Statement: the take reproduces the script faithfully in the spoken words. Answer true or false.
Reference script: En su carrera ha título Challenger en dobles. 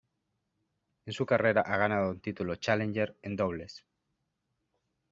false